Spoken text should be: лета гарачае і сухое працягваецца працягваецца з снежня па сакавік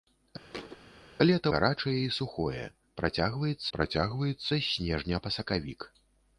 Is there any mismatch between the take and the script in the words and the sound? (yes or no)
yes